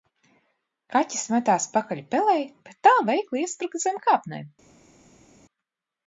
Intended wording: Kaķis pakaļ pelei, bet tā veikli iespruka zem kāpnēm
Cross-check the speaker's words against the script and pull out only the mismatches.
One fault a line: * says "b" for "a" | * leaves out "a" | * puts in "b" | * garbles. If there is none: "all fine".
* puts in "metās"